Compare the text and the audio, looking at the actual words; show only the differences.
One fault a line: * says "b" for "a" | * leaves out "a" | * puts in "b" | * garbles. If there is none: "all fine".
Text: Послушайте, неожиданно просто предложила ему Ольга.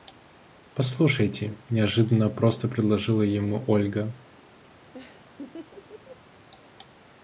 all fine